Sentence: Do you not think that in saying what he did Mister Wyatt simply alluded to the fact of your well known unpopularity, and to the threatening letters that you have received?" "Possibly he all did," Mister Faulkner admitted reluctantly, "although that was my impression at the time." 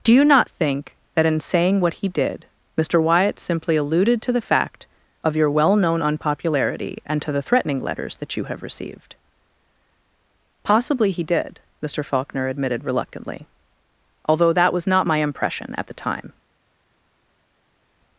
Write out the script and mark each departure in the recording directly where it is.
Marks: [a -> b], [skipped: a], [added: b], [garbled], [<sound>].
Do you not think that in saying what he did Mister Wyatt simply alluded to the fact of your well known unpopularity, and to the threatening letters that you have received?" "Possibly he [skipped: all] did," Mister Faulkner admitted reluctantly, "although that was [added: not] my impression at the time."